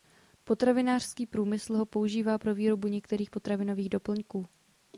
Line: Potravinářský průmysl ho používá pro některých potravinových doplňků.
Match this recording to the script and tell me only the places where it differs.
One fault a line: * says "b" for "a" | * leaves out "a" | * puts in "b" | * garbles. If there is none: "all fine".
* puts in "výrobu"